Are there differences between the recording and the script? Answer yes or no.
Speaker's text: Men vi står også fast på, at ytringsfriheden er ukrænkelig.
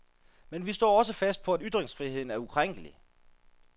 no